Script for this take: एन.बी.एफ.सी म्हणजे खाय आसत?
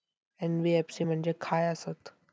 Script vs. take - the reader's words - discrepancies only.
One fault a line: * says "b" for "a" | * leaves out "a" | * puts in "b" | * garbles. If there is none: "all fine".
all fine